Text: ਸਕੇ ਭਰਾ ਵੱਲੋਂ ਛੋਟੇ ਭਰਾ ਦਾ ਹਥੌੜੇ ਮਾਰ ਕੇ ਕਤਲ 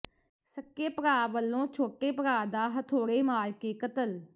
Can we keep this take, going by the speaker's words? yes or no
yes